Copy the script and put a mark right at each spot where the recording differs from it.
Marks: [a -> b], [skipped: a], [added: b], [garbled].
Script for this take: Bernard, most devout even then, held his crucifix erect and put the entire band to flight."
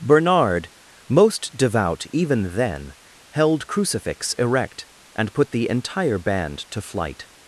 Bernard, most devout even then, held [skipped: his] crucifix erect and put the entire band to flight."